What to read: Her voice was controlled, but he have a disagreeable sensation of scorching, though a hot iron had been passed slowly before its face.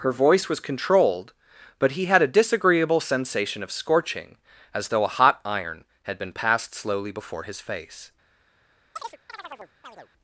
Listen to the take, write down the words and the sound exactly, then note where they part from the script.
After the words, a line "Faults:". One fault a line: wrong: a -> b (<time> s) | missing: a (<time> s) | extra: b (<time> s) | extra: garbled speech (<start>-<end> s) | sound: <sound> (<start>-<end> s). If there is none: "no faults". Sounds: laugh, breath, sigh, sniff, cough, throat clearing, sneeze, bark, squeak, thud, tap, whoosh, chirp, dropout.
Her voice was controlled, but he had a disagreeable sensation of scorching, as though a hot iron had been passed slowly before his face.
Faults:
wrong: have -> had (2.0 s)
extra: as (4.7 s)
wrong: its -> his (7.4 s)
sound: chirp (9.0-10.1 s)